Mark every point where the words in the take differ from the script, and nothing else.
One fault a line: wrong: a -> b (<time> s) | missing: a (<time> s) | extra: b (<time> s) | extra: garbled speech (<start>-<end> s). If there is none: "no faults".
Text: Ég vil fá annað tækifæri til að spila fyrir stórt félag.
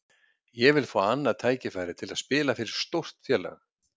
no faults